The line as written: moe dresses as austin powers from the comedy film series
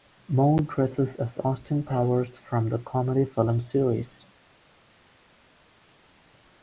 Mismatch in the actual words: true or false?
false